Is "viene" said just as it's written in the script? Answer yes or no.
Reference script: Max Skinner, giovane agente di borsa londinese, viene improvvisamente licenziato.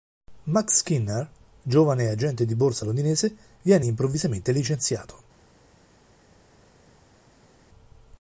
yes